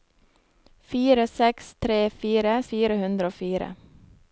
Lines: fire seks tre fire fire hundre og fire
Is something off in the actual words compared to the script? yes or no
no